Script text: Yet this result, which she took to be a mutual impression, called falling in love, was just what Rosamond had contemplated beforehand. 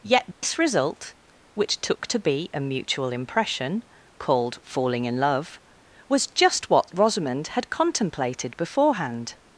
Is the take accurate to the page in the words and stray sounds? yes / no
no